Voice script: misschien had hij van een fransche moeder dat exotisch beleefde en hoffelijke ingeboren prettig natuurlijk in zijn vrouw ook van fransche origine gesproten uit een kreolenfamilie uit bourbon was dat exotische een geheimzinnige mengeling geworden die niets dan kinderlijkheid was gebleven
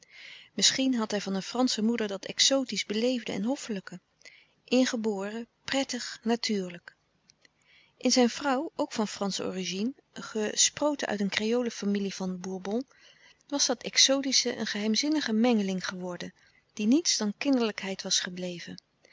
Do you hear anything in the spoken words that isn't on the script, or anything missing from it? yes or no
yes